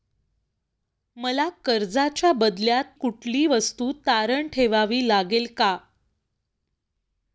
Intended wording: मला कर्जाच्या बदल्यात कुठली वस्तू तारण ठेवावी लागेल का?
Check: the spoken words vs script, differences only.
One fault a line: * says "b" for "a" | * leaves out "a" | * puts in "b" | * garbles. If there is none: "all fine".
all fine